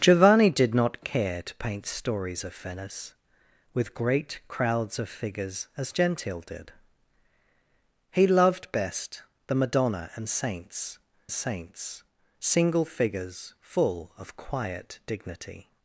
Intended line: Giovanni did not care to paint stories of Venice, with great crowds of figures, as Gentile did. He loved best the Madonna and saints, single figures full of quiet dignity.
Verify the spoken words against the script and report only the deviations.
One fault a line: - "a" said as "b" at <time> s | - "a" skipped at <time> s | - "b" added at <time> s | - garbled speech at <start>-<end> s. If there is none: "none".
- "saints" added at 11.3 s